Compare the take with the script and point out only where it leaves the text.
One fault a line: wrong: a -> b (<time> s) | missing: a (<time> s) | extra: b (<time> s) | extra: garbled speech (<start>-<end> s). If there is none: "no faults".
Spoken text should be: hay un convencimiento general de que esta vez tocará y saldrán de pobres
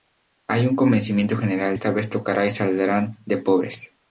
missing: de que (1.8 s)